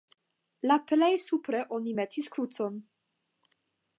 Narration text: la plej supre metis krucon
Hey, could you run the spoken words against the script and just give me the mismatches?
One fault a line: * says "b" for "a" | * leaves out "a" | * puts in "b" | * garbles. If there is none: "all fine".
* puts in "oni"